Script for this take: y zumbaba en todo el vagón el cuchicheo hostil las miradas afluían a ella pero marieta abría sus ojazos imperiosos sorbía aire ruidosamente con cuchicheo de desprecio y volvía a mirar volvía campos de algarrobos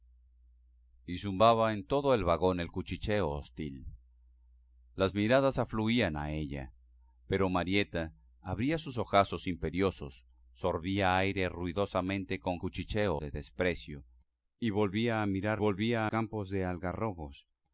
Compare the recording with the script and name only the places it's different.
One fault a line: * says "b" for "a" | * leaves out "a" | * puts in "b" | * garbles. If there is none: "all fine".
all fine